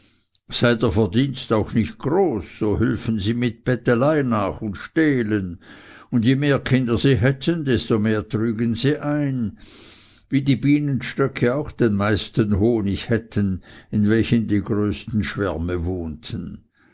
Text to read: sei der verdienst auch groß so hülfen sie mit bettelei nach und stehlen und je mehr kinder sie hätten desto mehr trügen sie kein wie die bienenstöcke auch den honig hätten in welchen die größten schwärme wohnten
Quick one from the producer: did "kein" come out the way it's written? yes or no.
no